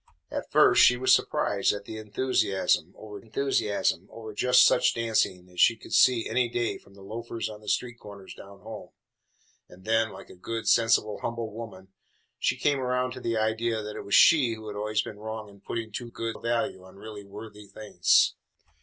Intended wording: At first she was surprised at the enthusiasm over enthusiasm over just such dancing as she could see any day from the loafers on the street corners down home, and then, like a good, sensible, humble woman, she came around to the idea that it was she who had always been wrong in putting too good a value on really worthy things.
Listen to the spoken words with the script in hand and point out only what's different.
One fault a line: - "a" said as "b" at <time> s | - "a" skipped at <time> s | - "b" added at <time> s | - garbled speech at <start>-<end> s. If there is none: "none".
none